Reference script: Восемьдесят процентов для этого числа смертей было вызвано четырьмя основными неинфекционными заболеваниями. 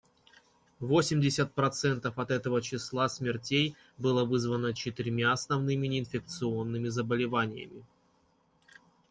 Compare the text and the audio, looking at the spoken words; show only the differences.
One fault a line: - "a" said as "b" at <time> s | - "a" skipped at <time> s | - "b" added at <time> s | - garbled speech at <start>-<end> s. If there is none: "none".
- "для" said as "от" at 2.2 s